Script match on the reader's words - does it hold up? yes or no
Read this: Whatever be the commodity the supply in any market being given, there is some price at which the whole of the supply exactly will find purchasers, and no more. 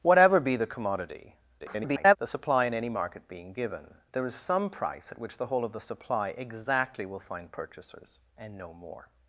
no